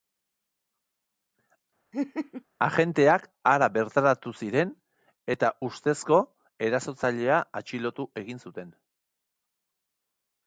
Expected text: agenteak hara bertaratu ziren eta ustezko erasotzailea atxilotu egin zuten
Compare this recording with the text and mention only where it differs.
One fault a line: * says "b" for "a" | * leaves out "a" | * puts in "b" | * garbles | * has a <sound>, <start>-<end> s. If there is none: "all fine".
* has a laugh, 1.9-2.4 s